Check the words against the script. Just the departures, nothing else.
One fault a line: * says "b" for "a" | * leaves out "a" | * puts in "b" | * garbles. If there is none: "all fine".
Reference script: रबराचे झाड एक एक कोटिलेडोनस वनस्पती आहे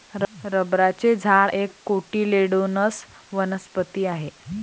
* leaves out "एक"